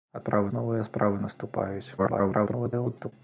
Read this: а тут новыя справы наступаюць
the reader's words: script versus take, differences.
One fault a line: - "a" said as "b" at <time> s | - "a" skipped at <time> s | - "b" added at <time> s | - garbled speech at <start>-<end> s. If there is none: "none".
- "тут" said as "справы" at 0.2 s
- garbled speech at 2.0-3.1 s